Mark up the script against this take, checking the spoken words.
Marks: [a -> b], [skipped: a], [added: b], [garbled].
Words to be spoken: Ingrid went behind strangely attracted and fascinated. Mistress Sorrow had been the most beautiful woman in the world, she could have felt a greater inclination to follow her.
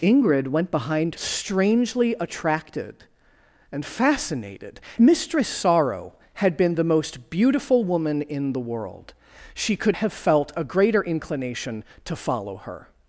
Ingrid went behind strangely attracted and fascinated. Mistress Sorrow had been the most beautiful woman in the world, she could have felt a greater inclination to follow her.